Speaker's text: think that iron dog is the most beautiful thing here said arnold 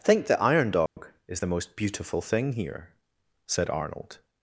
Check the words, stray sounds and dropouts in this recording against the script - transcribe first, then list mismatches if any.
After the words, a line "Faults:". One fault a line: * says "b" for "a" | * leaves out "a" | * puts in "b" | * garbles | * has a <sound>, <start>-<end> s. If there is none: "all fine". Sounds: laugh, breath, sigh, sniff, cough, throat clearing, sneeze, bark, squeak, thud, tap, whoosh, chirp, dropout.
think the iron dog is the most beautiful thing here said arnold
Faults:
* says "the" for "that"
* has a dropout, 0.9-1.0 s